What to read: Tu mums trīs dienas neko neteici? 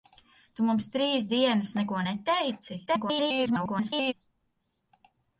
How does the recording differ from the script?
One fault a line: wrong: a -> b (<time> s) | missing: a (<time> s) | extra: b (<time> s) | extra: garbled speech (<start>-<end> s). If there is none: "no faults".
extra: garbled speech (2.9-4.1 s)